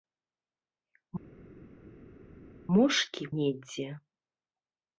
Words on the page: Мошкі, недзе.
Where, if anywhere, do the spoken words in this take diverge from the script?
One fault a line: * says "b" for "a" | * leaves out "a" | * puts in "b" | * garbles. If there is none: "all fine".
all fine